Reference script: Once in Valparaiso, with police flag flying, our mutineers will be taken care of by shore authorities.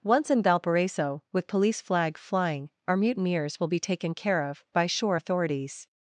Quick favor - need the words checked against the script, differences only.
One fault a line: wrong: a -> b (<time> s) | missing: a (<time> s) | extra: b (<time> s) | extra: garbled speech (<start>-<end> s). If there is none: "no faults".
no faults